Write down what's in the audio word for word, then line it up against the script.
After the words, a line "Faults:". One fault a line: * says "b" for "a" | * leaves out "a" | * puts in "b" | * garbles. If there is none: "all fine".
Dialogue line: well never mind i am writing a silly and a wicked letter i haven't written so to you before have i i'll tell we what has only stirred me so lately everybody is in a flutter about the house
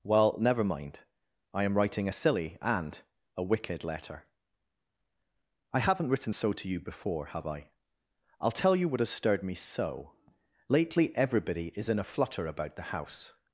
well never mind i am writing a silly and a wicked letter i haven't written so to you before have i i'll tell you what has stirred me so lately everybody is in a flutter about the house
Faults:
* says "you" for "we"
* leaves out "only"